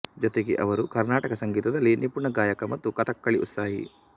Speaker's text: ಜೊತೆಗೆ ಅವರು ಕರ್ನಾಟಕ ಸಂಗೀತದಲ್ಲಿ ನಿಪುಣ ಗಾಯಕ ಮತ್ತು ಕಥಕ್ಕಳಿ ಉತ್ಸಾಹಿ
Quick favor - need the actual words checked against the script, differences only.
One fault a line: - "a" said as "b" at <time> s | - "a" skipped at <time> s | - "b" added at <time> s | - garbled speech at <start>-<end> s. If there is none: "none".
none